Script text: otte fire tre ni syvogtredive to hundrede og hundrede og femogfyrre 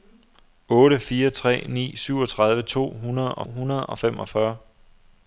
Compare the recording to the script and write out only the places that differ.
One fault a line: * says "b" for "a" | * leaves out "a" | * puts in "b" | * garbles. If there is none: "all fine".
all fine